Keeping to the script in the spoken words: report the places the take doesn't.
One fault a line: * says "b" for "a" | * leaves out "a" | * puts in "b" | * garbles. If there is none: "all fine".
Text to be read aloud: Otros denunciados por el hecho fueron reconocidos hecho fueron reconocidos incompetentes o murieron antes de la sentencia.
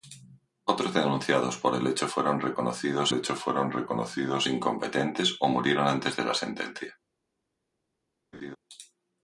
all fine